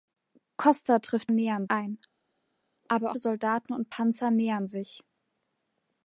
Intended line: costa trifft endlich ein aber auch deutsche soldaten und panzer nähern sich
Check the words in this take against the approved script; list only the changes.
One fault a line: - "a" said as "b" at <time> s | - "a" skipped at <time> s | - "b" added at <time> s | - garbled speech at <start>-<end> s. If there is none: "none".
- "endlich" said as "nähern" at 1.3 s
- "auch deutsche" skipped at 3.1 s